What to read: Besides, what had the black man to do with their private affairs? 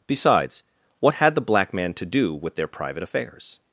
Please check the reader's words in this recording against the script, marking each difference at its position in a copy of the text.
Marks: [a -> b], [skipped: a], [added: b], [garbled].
Besides, what had the black man to do with their private affairs?